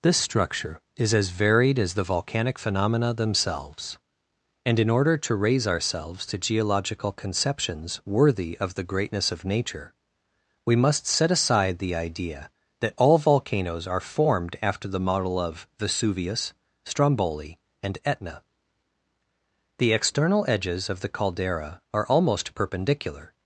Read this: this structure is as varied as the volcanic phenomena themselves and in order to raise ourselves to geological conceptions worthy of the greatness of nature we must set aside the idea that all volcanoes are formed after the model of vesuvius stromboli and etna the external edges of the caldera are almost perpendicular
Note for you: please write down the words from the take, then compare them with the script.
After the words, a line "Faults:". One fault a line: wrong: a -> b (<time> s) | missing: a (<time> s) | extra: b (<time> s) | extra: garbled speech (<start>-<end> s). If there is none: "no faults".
this structure is as varied as the volcanic phenomena themselves and in order to raise ourselves to geological conceptions worthy of the greatness of nature we must set aside the idea that all volcanoes are formed after the model of vesuvius stromboli and etna the external edges of the caldera are almost perpendicular
Faults:
no faults